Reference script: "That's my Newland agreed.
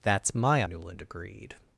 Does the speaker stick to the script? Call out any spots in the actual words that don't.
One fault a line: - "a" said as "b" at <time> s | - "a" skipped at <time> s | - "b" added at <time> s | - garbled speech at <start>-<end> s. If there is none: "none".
none